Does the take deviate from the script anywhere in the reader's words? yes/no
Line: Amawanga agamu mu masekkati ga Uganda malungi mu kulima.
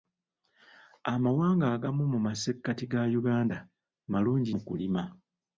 no